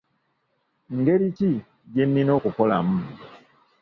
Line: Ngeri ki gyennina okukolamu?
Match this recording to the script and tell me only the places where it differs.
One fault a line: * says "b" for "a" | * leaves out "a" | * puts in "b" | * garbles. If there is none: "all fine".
all fine